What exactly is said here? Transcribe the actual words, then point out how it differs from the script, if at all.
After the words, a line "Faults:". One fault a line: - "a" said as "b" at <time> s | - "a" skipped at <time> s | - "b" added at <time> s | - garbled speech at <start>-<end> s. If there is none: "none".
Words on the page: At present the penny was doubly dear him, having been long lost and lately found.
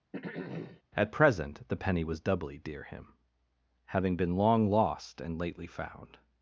At present the penny was doubly dear him, having been long lost and lately found.
Faults:
none